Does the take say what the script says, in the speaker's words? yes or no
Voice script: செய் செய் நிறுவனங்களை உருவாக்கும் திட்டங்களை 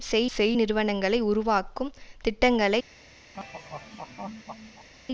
yes